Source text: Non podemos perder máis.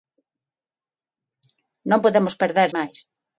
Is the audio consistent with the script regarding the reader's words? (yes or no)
yes